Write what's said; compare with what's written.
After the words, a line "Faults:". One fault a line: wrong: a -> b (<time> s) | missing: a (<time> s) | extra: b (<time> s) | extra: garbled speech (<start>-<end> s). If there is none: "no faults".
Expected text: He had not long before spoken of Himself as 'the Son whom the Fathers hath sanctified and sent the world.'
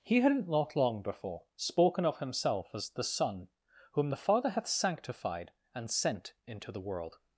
He had not long before spoken of Himself as 'the Son whom the Father hath sanctified and sent into the world.'
Faults:
wrong: Fathers -> Father (4.2 s)
extra: into (6.5 s)